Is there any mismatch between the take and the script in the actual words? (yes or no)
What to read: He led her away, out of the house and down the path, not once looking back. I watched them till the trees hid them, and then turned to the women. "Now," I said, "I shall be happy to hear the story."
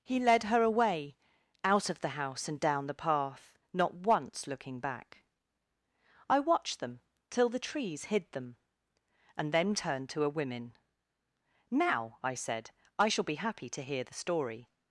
yes